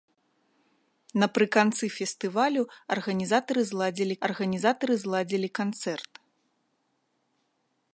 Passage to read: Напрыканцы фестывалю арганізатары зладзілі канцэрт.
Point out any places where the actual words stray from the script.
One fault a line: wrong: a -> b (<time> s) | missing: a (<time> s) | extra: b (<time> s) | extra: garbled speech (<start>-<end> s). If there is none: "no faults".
extra: арганізатары зладзілі (4.3 s)